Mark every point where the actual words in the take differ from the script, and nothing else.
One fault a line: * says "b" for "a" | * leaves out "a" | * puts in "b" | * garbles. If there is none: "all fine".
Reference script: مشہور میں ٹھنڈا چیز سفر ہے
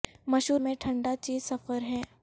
all fine